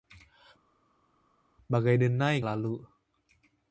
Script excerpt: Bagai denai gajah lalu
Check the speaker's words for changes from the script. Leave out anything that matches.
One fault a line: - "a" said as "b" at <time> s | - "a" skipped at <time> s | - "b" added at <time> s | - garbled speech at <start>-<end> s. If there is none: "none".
- "gajah" skipped at 2.4 s